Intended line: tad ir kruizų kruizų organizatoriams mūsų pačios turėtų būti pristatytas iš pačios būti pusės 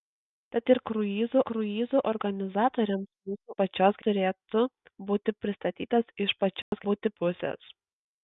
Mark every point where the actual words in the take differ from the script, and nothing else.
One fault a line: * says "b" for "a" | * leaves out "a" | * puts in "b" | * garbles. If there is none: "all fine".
all fine